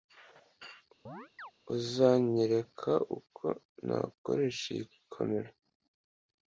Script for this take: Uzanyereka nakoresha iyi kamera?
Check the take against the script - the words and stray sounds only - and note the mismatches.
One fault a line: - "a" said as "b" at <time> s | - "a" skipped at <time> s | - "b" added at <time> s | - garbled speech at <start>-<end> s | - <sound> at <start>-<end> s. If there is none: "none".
- chirp at 1.1-1.5 s
- "uko" added at 3.2 s